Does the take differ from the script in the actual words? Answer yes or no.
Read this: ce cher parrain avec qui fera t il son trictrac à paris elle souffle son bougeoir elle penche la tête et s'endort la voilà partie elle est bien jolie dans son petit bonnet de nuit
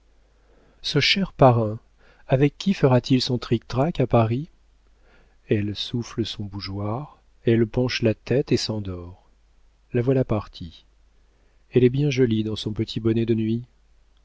no